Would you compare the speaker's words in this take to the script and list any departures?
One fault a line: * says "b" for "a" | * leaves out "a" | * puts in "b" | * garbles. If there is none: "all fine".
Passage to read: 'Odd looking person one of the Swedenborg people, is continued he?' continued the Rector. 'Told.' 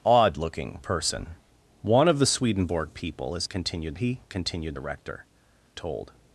all fine